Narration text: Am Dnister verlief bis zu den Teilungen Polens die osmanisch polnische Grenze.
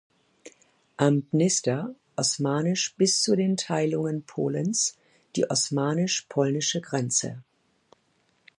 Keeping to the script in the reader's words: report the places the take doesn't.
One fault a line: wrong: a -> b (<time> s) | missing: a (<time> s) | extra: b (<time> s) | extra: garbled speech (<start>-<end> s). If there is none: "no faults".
wrong: verlief -> osmanisch (2.2 s)